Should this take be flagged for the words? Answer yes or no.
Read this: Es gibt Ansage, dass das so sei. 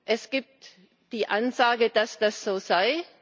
yes